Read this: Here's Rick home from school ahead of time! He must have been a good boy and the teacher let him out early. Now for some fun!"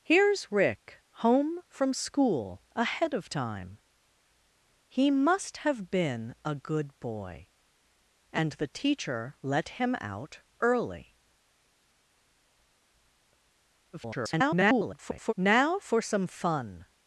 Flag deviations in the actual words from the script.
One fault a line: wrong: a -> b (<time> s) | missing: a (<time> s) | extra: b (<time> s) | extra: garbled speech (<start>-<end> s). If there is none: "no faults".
extra: garbled speech (13.9-15.3 s)